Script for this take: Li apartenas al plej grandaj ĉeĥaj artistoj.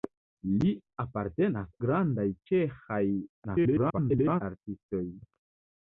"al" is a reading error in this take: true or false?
true